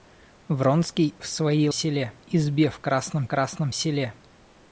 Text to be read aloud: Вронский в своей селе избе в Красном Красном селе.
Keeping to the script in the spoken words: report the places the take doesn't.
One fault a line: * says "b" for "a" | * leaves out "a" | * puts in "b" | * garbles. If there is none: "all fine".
all fine